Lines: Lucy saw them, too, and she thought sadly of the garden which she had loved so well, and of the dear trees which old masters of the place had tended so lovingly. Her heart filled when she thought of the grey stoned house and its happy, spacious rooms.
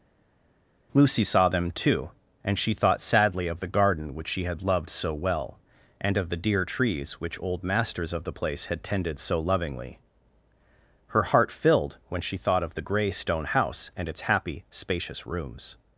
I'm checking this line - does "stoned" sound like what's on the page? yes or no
no